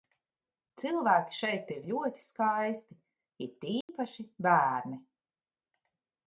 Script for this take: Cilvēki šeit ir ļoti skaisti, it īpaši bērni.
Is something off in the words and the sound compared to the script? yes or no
yes